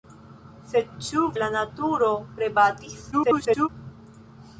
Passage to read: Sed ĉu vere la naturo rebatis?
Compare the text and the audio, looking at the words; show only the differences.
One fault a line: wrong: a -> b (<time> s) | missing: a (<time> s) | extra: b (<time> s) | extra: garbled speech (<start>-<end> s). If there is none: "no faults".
missing: vere (1.2 s)
extra: garbled speech (3.1-3.7 s)